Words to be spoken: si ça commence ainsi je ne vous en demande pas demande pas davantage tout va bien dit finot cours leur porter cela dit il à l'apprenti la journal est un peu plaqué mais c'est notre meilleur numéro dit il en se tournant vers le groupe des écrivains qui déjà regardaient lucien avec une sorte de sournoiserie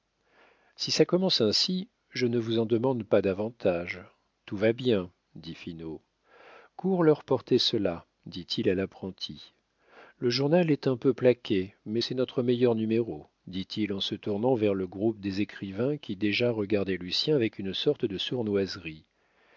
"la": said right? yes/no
no